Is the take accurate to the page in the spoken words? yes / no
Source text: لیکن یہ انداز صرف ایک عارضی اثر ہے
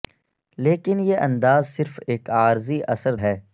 yes